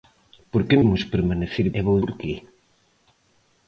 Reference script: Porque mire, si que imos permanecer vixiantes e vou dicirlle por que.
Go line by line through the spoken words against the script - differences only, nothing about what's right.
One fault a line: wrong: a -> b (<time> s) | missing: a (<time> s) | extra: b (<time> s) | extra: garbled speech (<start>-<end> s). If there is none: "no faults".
missing: mire si que (0.8 s)
missing: vixiantes (1.7 s)
missing: dicirlle (2.0 s)